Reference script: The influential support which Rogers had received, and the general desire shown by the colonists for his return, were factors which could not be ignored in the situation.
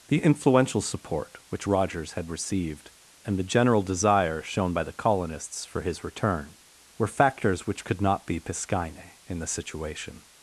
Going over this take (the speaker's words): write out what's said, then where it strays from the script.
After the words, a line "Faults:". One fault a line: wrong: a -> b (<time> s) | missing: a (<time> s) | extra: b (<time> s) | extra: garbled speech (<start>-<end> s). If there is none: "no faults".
The influential support which Rogers had received, and the general desire shown by the colonists for his return, were factors which could not be piscine in the situation.
Faults:
wrong: ignored -> piscine (8.4 s)